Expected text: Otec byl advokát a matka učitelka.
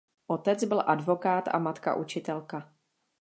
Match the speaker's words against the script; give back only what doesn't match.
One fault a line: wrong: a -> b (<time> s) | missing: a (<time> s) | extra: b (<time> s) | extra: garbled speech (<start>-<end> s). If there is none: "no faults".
no faults